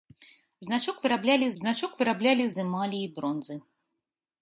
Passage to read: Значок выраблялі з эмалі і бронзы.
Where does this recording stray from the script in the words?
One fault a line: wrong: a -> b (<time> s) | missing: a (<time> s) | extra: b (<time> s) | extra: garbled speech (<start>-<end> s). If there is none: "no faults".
extra: значок выраблялі (1.6 s)